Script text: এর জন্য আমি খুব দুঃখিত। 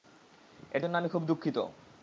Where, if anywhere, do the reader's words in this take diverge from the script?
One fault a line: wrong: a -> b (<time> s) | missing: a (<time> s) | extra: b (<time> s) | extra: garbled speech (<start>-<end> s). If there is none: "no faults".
no faults